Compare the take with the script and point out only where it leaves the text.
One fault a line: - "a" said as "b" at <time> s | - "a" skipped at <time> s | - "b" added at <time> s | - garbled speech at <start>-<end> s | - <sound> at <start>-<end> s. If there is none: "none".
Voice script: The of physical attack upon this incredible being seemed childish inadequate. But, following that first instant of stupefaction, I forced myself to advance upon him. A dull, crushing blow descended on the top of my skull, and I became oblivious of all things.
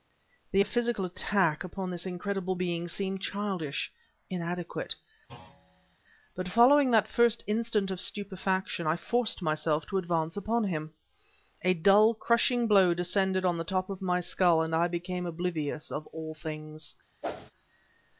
- thud at 5.3-6.0 s
- whoosh at 17.2-17.5 s